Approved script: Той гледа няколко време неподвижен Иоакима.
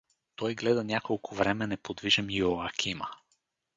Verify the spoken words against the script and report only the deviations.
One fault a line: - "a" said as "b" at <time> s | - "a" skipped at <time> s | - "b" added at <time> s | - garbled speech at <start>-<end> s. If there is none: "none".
none